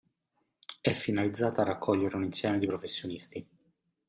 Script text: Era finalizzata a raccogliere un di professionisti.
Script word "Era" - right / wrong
wrong